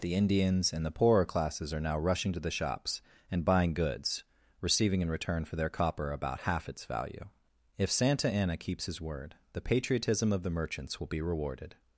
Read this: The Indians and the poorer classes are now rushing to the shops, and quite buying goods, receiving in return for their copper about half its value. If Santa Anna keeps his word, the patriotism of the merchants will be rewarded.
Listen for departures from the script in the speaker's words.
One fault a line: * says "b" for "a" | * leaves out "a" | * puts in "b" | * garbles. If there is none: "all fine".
* leaves out "quite"